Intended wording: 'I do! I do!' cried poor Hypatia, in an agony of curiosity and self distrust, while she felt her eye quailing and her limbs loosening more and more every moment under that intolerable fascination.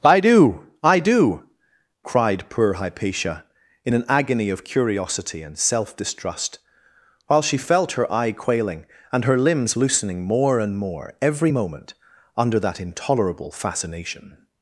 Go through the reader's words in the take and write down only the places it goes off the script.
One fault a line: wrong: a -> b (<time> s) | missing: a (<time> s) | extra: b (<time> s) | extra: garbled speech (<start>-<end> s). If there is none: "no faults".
no faults